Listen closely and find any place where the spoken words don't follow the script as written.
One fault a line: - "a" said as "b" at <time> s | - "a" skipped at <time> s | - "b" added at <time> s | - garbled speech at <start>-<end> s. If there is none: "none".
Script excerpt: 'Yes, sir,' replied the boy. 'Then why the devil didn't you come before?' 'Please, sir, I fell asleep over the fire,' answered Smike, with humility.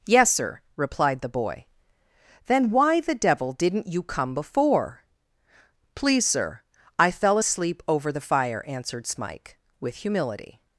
none